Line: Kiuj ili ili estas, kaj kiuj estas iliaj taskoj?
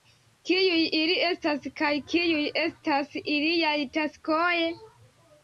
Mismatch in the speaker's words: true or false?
true